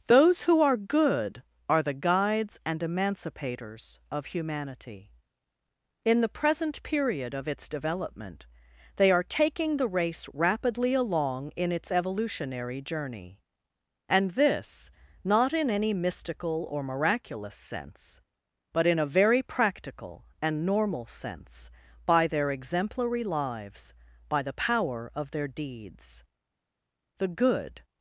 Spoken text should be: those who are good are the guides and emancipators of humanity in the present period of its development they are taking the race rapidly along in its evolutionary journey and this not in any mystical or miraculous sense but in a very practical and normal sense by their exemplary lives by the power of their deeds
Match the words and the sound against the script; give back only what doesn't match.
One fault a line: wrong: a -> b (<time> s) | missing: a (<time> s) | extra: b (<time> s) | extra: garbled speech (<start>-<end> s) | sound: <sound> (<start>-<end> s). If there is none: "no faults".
extra: the good (27.2 s)